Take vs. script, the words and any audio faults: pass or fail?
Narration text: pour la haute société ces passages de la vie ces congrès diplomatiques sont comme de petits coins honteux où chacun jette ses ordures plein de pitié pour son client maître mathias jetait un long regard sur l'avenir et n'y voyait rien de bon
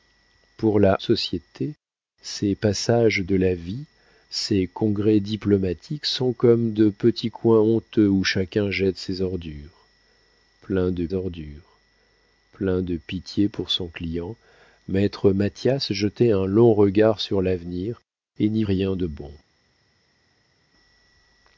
fail